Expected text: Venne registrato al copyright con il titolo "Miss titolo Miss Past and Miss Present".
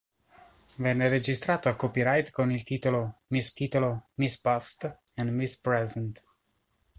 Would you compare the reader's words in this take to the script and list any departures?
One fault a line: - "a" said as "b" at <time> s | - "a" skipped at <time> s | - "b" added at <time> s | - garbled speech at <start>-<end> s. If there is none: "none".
none